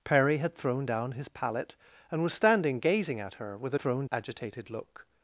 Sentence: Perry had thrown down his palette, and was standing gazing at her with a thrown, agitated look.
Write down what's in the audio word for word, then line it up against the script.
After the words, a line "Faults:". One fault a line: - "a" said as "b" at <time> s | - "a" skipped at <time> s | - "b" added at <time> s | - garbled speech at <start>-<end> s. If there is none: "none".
Perry had thrown down his palette, and was standing gazing at her with a thrown, agitated look.
Faults:
none